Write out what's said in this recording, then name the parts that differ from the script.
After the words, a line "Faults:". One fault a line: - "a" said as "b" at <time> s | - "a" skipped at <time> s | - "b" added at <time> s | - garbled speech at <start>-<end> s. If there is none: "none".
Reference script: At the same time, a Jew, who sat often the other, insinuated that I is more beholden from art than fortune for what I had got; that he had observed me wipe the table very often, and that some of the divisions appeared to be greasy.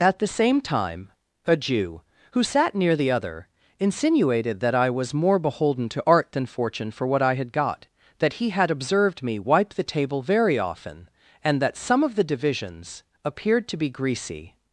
At the same time, a Jew, who sat near the other, insinuated that I was more beholden to art than fortune for what I had got; that he had observed me wipe the table very often, and that some of the divisions appeared to be greasy.
Faults:
- "often" said as "near" at 2.7 s
- "is" said as "was" at 4.9 s
- "from" said as "to" at 5.9 s